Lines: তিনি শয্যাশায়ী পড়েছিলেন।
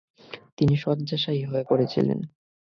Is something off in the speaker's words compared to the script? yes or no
yes